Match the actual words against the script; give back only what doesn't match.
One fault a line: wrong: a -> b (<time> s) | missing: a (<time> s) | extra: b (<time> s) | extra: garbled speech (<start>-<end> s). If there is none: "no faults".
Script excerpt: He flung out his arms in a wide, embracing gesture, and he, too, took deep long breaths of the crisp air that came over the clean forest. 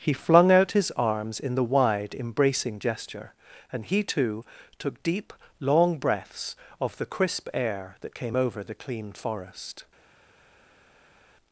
wrong: a -> the (1.5 s)